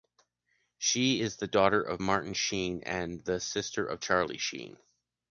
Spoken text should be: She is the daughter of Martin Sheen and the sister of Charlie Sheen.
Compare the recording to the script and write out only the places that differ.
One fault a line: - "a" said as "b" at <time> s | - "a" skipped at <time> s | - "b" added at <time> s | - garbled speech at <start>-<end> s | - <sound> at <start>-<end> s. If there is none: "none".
none